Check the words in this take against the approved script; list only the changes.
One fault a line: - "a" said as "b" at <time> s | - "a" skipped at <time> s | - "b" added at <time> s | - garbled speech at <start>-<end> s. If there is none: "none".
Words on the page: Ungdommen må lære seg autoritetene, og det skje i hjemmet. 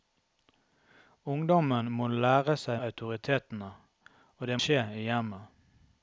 none